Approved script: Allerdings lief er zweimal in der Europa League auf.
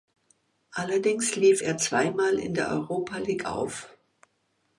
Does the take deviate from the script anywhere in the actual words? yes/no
no